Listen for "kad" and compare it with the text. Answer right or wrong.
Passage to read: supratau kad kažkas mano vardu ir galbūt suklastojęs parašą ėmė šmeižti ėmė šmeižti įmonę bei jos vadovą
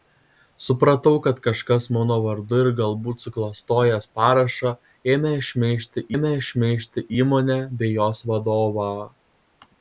right